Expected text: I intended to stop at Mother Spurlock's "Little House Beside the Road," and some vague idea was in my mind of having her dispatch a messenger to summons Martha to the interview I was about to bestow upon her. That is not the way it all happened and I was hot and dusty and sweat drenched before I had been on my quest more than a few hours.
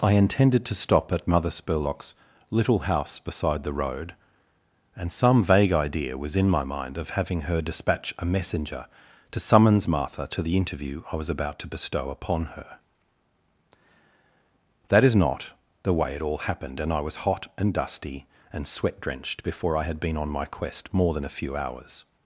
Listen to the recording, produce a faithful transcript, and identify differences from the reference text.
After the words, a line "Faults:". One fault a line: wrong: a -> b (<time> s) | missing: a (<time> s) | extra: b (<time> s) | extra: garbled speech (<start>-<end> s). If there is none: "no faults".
I intended to stop at Mother Spurlock's "Little House Beside the Road," and some vague idea was in my mind of having her dispatch a messenger to summons Martha to the interview I was about to bestow upon her. That is not the way it all happened and I was hot and dusty and sweat drenched before I had been on my quest more than a few hours.
Faults:
no faults